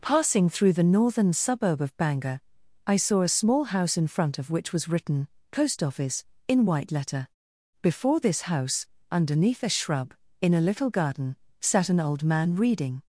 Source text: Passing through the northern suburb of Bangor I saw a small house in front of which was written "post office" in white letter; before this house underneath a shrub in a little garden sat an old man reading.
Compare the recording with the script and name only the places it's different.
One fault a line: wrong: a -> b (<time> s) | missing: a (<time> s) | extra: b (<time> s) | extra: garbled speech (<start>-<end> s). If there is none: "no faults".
no faults